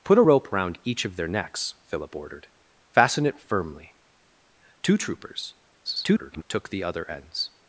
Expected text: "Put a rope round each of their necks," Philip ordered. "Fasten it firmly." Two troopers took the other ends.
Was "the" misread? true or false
false